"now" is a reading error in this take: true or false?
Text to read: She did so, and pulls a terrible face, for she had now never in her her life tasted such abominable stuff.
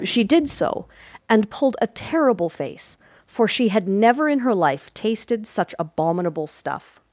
true